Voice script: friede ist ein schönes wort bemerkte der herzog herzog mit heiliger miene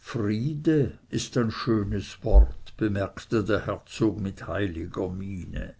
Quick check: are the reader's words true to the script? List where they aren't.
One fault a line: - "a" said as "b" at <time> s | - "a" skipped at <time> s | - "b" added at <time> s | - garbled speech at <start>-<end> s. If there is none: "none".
- "herzog" skipped at 4.2 s